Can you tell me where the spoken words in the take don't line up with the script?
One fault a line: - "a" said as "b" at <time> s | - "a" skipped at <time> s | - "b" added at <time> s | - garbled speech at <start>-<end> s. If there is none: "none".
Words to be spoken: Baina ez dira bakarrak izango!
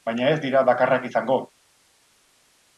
none